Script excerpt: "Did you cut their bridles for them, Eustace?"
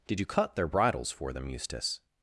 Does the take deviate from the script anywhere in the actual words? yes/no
no